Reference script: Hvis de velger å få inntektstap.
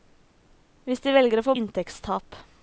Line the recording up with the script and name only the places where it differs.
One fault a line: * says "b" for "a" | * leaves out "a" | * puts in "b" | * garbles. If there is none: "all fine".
all fine